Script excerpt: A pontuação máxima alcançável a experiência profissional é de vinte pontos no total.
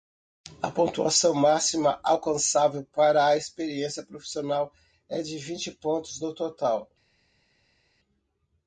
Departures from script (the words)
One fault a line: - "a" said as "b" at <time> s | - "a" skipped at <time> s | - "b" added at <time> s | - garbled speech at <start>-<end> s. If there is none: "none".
- "para" added at 2.9 s